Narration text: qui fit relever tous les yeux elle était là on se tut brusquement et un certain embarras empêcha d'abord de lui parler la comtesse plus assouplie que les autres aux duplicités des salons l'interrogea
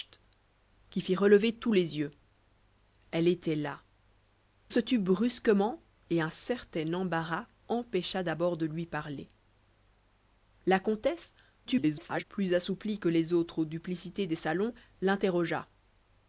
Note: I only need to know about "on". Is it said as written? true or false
false